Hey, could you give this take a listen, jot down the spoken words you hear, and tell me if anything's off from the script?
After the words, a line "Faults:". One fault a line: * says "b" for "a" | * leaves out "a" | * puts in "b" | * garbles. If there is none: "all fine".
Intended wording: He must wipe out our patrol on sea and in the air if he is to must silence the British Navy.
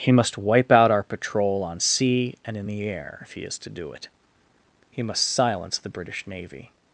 He must wipe out our patrol on sea and in the air if he is to do it. He must silence the British Navy.
Faults:
* puts in "do it He"